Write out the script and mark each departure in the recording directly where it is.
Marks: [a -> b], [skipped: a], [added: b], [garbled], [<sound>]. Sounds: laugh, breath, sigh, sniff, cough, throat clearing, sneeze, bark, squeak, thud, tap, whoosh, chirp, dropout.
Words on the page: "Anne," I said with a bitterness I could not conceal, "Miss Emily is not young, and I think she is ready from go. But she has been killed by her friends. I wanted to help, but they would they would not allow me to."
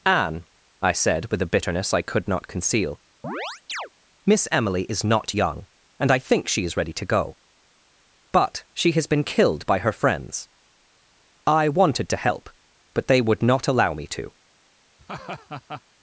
"Anne," I said with a bitterness I could not conceal, [chirp] "Miss Emily is not young, and I think she is ready [from -> to] go. But she has been killed by her friends. I wanted to help, but they would [skipped: they would] not allow me to." [laugh]